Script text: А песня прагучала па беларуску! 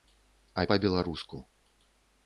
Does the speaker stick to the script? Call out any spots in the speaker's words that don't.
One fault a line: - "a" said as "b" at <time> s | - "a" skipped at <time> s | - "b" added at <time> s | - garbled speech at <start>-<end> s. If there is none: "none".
- "песня прагучала" skipped at 0.6 s